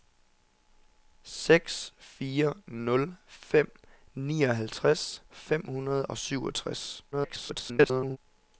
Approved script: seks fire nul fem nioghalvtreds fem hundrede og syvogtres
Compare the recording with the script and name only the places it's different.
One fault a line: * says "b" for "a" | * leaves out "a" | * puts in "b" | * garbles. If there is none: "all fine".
* garbles